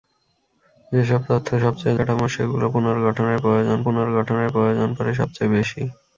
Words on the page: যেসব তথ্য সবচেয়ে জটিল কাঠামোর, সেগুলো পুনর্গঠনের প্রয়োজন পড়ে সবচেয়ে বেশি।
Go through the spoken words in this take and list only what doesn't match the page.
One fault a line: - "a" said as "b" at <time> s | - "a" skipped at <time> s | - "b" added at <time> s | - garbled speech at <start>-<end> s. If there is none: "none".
- "জটিল" skipped at 2.0 s
- "পুনর্গঠনের প্রয়োজন" added at 3.9 s